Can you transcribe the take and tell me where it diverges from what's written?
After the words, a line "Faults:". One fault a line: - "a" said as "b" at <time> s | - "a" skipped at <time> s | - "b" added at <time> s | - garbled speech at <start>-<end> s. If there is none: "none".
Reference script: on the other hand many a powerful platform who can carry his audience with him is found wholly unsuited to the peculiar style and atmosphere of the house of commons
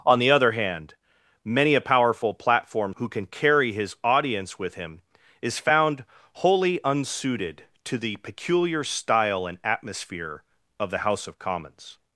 on the other hand many a powerful platform who can carry his audience with him is found wholly unsuited to the peculiar style and atmosphere of the house of commons
Faults:
none